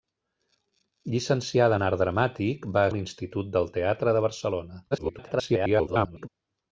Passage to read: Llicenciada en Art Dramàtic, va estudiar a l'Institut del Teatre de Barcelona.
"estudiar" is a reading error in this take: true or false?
true